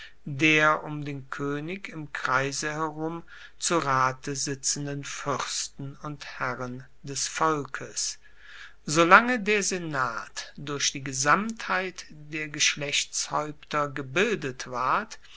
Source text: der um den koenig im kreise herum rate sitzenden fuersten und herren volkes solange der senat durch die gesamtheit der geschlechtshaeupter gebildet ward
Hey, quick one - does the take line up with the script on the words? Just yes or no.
no